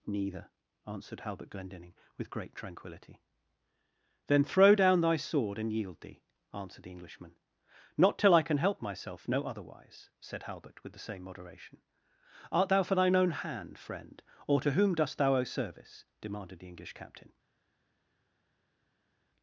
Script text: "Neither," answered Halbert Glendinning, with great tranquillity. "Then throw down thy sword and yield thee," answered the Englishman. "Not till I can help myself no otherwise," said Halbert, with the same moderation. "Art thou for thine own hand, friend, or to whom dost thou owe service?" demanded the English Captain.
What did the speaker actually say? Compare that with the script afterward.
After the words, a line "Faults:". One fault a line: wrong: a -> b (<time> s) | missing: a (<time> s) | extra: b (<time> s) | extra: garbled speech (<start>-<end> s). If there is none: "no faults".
"Neither," answered Halbert Glendinning, with great tranquillity. "Then throw down thy sword and yield thee," answered the Englishman. "Not till I can help myself no otherwise," said Halbert, with the same moderation. "Art thou for thine own hand, friend, or to whom dost thou owe service?" demanded the English Captain.
Faults:
no faults